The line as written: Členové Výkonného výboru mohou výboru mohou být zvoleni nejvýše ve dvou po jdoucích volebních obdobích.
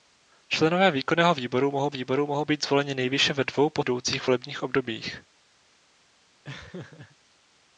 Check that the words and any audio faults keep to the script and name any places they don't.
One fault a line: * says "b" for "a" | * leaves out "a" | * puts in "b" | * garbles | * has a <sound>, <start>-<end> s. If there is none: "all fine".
* has a laugh, 6.4-7.2 s